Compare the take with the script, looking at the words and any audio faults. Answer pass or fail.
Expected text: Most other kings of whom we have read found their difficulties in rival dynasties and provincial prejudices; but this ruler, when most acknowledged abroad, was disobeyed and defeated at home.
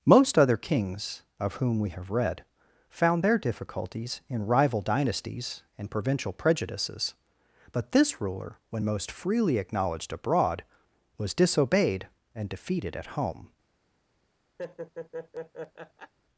fail